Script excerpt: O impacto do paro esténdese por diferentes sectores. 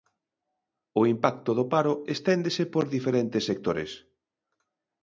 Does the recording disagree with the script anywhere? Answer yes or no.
no